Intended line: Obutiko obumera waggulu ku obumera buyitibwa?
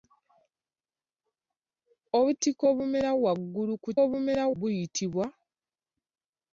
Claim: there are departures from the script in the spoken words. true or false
false